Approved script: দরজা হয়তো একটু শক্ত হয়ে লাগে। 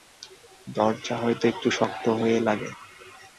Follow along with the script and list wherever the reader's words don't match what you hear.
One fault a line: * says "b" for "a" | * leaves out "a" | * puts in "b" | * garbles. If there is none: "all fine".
all fine